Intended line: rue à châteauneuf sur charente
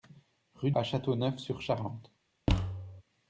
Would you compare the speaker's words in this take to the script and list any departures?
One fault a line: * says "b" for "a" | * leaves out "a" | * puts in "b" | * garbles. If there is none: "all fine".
all fine